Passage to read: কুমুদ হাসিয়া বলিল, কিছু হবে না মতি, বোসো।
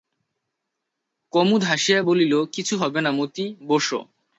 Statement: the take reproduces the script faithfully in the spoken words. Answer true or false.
true